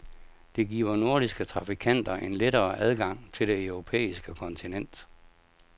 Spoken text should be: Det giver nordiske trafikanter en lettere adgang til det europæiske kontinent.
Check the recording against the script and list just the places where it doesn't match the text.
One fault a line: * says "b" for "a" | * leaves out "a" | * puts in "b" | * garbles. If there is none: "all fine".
all fine